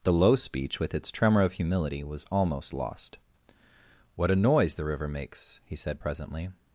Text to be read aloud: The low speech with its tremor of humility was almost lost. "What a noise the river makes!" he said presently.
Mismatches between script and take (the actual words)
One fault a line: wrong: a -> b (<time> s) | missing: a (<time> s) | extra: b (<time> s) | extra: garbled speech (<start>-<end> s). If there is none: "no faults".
no faults